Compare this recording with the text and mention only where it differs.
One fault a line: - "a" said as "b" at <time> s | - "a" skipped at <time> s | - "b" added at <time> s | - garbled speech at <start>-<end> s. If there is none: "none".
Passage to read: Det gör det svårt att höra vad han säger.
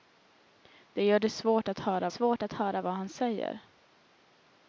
- "svårt att höra" added at 2.1 s